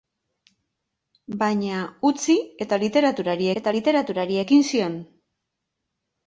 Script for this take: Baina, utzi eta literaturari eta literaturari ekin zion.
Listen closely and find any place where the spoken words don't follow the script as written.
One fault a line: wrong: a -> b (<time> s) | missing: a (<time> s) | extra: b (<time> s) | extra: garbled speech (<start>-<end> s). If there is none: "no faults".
no faults